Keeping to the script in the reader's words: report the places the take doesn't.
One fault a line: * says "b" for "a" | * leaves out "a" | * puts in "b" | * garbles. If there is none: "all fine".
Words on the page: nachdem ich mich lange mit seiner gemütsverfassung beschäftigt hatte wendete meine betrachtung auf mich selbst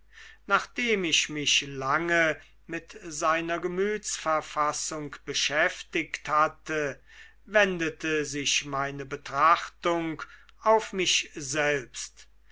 * puts in "sich"